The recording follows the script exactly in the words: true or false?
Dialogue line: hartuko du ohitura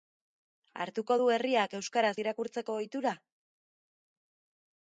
false